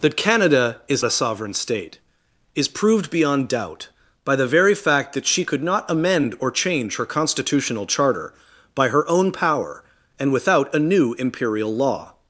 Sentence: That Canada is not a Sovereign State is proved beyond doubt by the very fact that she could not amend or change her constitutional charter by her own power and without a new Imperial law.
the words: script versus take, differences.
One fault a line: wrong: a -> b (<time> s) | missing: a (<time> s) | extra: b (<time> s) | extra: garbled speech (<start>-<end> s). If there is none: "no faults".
missing: not (1.1 s)